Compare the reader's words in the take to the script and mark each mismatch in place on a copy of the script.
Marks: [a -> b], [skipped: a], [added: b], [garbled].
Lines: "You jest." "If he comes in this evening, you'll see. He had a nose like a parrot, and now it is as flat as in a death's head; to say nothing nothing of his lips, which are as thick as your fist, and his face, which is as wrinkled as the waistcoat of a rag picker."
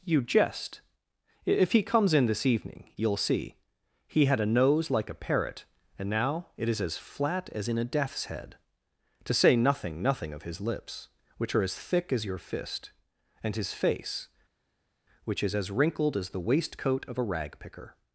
"You jest." "If he comes in this evening, you'll see. He had a nose like a parrot, and now it is as flat as in a death's head; to say nothing nothing of his lips, which are as thick as your fist, and his face, which is as wrinkled as the waistcoat of a rag picker."